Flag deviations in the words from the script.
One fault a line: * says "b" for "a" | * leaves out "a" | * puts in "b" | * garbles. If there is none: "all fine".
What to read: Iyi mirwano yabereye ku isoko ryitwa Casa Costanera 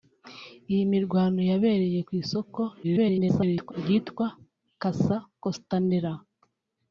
* garbles